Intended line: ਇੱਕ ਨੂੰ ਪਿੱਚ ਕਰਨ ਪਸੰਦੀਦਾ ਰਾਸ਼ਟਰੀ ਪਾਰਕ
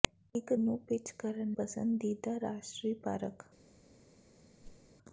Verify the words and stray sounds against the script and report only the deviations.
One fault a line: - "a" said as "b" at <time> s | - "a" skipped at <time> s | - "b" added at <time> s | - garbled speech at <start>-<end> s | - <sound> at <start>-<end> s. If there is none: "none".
- whoosh at 4.6-4.9 s